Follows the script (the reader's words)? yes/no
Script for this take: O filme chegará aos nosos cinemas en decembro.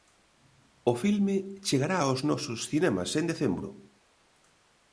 yes